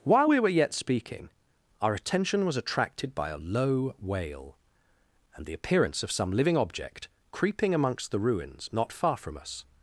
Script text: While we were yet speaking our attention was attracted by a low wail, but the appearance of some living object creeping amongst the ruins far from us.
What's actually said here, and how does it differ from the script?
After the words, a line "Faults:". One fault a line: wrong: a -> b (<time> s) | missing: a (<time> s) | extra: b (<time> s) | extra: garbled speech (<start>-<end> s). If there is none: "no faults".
While we were yet speaking our attention was attracted by a low wail, and the appearance of some living object creeping amongst the ruins not far from us.
Faults:
wrong: but -> and (5.4 s)
extra: not (8.7 s)